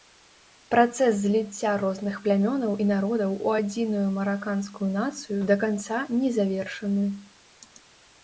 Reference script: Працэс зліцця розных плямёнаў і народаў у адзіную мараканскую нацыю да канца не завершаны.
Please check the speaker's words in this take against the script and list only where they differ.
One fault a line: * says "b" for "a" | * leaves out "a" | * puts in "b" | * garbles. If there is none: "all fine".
all fine